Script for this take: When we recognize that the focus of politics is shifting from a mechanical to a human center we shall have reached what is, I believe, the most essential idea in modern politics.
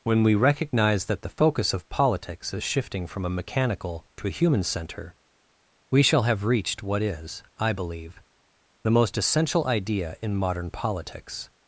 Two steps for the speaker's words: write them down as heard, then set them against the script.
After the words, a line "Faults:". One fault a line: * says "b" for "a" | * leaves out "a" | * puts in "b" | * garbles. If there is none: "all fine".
When we recognize that the focus of politics is shifting from a mechanical to a human center we shall have reached what is, I believe, the most essential idea in modern politics.
Faults:
all fine